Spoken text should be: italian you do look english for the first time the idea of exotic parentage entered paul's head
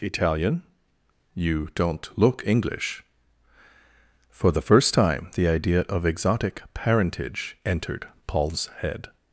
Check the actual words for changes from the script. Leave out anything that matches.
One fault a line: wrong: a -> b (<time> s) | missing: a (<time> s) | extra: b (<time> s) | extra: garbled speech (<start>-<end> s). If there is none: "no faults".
wrong: do -> don't (1.8 s)